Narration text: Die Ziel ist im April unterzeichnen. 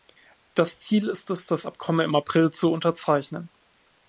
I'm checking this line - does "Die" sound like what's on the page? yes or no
no